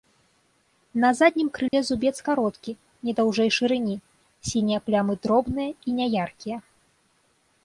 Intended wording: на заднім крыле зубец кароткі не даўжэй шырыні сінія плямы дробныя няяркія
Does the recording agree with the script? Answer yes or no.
no